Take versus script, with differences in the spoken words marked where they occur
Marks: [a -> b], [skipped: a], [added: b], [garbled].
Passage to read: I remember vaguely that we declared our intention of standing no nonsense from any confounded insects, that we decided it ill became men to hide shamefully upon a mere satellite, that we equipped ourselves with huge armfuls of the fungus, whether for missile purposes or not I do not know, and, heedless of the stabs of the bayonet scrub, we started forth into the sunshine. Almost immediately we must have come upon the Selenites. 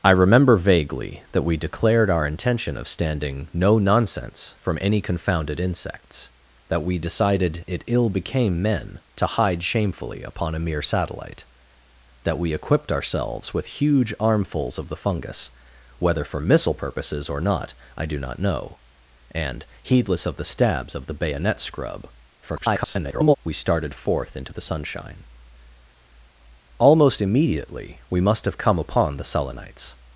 I remember vaguely that we declared our intention of standing no nonsense from any confounded insects, that we decided it ill became men to hide shamefully upon a mere satellite, that we equipped ourselves with huge armfuls of the fungus, whether for missile purposes or not I do not know, and, heedless of the stabs of the bayonet scrub, [garbled] we started forth into the sunshine. Almost immediately we must have come upon the Selenites.